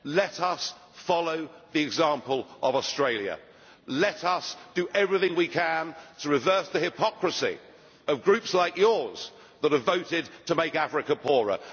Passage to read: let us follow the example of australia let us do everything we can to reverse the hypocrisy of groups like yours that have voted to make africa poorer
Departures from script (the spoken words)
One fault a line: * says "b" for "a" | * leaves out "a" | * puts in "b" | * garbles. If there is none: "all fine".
all fine